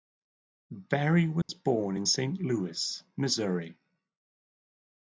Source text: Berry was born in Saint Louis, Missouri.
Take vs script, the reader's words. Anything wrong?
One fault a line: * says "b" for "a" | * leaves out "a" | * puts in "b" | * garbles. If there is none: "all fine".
all fine